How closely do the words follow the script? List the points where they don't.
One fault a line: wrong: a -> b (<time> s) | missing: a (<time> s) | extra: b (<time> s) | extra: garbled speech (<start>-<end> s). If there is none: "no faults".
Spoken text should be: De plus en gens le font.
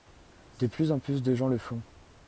extra: plus de (1.0 s)